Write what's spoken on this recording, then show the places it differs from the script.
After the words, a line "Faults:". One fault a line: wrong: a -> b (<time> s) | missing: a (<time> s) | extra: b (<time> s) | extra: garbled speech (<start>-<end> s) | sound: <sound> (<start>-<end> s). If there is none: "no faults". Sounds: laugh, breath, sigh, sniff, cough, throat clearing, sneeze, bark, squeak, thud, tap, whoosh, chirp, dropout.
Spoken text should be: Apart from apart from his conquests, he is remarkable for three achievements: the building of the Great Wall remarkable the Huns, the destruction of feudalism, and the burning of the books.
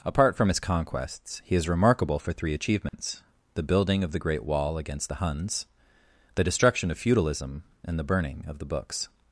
Apart from his conquests, he is remarkable for three achievements: the building of the Great Wall against the Huns, the destruction of feudalism, and the burning of the books.
Faults:
missing: apart from (0.5 s)
sound: dropout (2.9-2.9 s)
wrong: remarkable -> against (4.8 s)